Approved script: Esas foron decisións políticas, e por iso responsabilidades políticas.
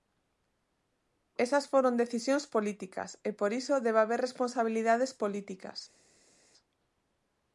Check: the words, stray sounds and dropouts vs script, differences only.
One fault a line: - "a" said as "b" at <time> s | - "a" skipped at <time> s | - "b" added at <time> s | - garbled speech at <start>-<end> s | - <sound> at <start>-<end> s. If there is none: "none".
- "debe haber" added at 3.9 s